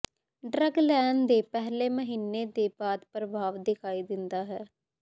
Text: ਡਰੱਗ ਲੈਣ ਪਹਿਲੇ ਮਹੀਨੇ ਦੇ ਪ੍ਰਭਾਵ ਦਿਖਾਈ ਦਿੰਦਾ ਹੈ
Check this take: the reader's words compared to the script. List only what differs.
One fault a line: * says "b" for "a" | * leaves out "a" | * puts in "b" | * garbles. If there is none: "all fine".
* puts in "ਦੇ"
* puts in "ਬਾਅਦ"